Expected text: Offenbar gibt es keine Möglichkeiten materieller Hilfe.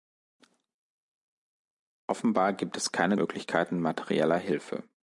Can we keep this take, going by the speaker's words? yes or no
yes